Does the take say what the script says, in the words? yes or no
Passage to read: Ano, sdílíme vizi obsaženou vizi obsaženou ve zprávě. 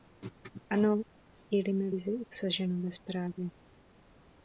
no